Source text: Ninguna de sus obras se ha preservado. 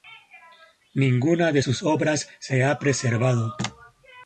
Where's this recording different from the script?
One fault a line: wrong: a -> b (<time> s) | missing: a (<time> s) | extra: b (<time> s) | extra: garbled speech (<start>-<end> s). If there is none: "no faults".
no faults